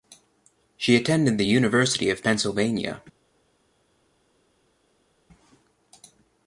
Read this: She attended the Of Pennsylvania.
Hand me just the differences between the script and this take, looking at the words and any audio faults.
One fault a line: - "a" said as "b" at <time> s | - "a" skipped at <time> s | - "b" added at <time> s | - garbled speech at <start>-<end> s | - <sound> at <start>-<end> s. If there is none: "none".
- "University" added at 1.4 s